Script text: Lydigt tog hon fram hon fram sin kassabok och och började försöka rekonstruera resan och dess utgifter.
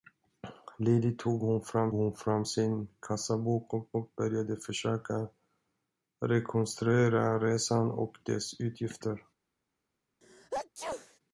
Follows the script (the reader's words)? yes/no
yes